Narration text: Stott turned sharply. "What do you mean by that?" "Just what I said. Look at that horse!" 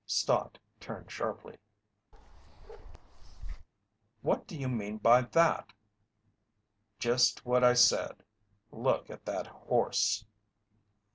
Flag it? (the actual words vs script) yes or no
no